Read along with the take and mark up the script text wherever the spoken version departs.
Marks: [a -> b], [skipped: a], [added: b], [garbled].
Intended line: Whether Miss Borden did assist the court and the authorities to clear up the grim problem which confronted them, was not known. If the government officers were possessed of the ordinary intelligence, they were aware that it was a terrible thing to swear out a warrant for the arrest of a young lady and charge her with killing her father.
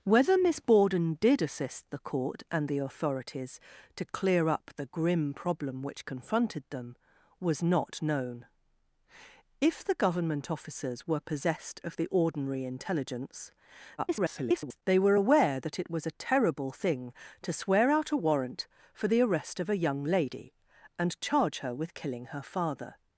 Whether Miss Borden did assist the court and the authorities to clear up the grim problem which confronted them, was not known. If the government officers were possessed of the ordinary intelligence, [garbled] they were aware that it was a terrible thing to swear out a warrant for the arrest of a young lady and charge her with killing her father.